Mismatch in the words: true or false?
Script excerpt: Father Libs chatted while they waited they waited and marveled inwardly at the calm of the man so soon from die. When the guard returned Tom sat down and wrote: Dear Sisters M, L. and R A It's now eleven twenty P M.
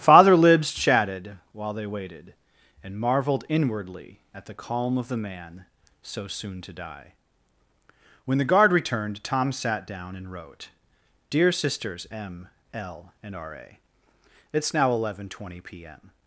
true